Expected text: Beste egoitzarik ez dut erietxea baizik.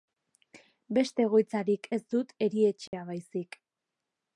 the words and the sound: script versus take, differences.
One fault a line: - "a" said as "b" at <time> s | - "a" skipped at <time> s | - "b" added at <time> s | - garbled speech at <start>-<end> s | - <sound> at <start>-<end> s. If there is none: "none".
- dropout at 2.9-2.9 s